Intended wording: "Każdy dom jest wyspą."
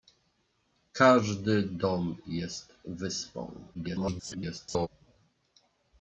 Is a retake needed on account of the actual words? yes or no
yes